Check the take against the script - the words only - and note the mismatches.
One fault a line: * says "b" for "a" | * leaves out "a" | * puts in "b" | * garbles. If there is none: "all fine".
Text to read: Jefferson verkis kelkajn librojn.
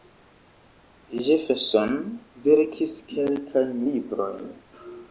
all fine